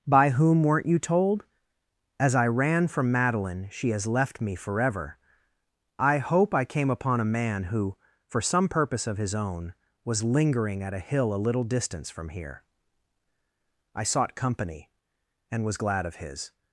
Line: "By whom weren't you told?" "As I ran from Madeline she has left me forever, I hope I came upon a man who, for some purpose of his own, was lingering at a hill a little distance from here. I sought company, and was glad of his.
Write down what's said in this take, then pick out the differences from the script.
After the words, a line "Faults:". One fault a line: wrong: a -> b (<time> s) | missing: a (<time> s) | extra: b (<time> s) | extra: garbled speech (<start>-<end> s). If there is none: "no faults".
"By whom weren't you told?" "As I ran from Madeline she has left me forever, I hope I came upon a man who, for some purpose of his own, was lingering at a hill a little distance from here. I sought company, and was glad of his.
Faults:
no faults